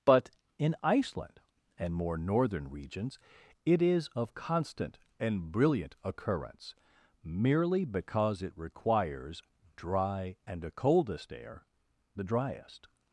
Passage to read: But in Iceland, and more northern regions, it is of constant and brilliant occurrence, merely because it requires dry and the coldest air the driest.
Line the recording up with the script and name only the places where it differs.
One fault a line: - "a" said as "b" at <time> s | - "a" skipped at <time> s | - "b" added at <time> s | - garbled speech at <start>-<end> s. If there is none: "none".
none